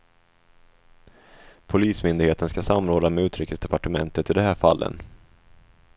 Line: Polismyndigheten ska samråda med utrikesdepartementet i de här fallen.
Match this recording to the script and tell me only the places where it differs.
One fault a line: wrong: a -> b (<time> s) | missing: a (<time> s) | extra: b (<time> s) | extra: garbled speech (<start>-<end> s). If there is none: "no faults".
no faults